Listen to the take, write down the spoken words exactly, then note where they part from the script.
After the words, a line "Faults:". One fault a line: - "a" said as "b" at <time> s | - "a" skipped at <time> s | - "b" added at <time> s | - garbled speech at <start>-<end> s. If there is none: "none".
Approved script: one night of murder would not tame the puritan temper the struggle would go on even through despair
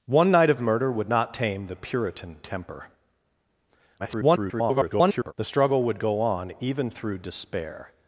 one night of murder would not tame the puritan temper [garbled] the struggle would go on even through despair
Faults:
- garbled speech at 4.0-5.3 s